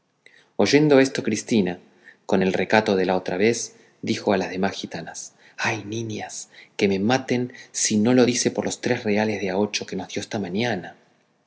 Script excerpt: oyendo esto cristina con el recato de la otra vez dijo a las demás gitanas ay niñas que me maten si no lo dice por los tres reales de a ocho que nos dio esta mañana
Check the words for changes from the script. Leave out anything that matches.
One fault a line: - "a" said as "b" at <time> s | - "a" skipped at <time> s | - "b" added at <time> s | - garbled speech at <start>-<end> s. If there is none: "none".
none